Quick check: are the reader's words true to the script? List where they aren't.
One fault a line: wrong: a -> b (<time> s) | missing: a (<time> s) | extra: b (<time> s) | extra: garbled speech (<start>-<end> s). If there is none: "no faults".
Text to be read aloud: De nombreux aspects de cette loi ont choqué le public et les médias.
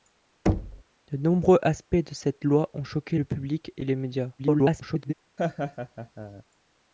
extra: garbled speech (4.4-5.1 s)